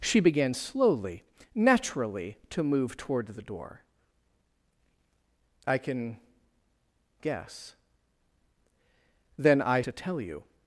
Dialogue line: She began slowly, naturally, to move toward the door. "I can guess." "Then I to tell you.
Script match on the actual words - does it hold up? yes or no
yes